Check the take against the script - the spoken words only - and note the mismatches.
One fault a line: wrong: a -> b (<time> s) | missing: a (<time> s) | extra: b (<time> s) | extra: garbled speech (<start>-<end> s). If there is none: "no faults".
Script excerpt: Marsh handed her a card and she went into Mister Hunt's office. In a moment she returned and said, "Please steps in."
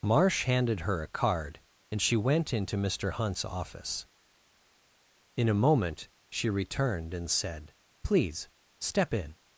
wrong: steps -> step (8.8 s)